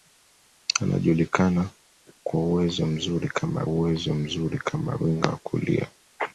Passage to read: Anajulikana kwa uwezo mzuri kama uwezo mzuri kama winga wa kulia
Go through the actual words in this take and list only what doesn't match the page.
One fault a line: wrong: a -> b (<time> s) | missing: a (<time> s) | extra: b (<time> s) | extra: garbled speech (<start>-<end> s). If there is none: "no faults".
no faults